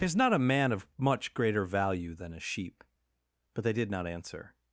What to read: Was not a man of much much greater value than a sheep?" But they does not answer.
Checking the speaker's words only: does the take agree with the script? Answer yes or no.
no